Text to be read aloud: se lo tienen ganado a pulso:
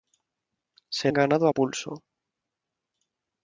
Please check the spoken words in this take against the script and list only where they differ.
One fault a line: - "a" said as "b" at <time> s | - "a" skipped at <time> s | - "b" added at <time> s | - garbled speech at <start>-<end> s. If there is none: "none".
- "lo tienen" skipped at 1.1 s